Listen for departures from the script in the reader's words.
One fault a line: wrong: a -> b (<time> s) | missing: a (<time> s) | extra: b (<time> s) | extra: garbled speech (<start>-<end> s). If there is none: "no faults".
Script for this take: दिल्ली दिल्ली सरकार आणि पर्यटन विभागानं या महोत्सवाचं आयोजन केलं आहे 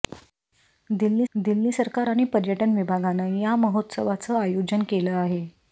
no faults